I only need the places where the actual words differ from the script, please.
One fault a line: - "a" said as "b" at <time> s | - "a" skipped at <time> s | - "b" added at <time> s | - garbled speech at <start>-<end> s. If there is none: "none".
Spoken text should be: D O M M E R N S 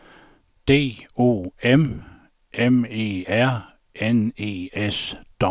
- "E" added at 4.4 s